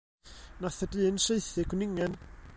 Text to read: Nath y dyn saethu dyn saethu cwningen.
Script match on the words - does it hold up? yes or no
no